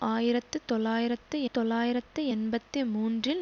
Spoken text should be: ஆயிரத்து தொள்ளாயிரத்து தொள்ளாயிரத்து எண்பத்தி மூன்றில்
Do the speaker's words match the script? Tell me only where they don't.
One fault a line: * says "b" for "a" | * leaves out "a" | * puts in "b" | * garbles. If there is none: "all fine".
all fine